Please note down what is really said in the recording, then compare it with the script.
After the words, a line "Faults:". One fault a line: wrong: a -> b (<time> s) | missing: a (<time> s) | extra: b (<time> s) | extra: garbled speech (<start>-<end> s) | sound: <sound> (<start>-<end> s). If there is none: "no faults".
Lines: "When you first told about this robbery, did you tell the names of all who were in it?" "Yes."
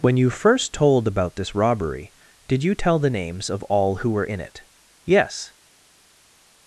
"When you first told about this robbery, did you tell the names of all who were in it?" "Yes."
Faults:
no faults